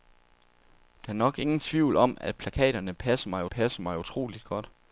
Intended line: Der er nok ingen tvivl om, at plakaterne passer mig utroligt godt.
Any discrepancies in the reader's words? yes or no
yes